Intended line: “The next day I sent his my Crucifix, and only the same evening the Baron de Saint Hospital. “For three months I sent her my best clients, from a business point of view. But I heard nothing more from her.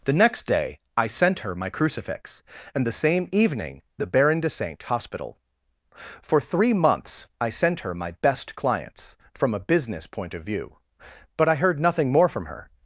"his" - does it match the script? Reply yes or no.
no